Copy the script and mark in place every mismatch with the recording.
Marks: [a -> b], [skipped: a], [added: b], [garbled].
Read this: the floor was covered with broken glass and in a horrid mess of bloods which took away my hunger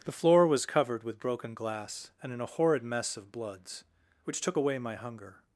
the floor was covered with broken glass and in a horrid mess of bloods which took away my hunger